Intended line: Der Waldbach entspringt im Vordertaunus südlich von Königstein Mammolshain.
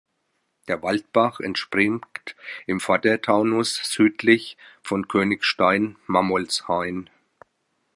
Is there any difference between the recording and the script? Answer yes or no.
no